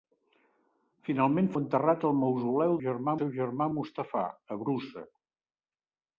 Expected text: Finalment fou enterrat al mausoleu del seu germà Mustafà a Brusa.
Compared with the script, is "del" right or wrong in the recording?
wrong